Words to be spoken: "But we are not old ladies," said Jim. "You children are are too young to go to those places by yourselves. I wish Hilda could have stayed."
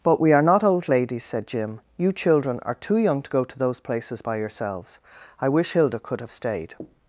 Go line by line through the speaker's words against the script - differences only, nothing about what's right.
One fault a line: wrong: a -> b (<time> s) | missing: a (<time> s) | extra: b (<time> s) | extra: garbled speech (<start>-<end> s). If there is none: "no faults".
missing: are (2.7 s)